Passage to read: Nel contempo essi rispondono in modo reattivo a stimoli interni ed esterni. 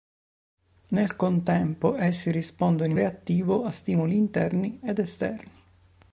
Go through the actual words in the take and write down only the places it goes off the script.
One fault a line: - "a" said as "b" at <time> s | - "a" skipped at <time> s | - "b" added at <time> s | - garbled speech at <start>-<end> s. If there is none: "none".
- "modo" skipped at 3.0 s